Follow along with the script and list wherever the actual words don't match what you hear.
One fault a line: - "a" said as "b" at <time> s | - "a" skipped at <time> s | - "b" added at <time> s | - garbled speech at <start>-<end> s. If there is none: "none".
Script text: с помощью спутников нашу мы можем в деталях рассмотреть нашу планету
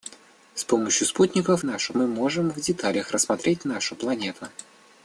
none